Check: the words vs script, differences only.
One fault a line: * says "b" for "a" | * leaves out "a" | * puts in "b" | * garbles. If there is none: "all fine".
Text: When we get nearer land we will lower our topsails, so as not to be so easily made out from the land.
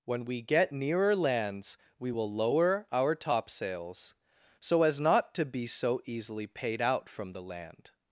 * says "lands" for "land"
* says "paid" for "made"